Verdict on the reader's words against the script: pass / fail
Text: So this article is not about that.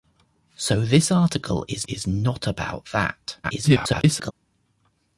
fail